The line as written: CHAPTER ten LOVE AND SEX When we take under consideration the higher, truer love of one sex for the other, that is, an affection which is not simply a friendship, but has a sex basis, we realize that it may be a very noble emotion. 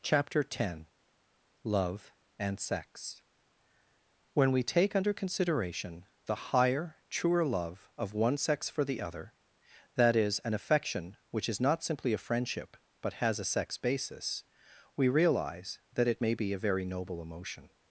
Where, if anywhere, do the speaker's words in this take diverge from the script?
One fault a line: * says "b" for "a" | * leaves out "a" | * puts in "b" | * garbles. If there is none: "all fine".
all fine